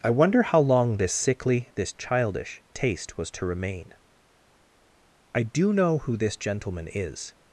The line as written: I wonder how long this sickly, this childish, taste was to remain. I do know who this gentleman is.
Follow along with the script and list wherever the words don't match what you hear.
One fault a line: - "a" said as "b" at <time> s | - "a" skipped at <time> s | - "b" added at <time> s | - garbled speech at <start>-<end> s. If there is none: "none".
none